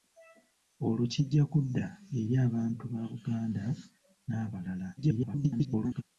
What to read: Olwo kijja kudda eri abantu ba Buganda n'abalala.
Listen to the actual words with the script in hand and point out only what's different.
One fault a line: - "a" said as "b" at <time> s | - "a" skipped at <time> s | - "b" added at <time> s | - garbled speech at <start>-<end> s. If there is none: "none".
- garbled speech at 5.0-6.0 s